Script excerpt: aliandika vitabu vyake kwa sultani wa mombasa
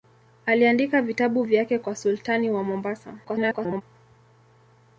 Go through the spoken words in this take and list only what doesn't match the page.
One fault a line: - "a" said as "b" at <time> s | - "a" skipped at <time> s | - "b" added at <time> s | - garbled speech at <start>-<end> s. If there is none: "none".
- garbled speech at 3.2-3.8 s